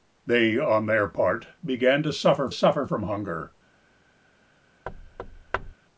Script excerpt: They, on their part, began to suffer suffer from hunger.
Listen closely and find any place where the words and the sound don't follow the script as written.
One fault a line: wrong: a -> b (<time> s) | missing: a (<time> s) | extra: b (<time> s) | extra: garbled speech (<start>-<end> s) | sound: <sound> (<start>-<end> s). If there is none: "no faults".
sound: thud (4.9-5.7 s)